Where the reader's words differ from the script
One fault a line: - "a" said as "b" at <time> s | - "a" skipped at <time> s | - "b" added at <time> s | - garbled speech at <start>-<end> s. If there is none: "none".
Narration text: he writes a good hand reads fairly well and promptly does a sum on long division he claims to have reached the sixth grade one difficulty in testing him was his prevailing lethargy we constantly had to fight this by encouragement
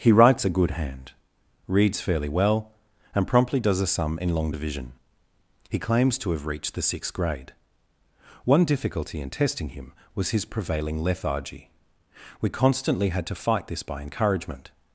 - "on" said as "in" at 4.2 s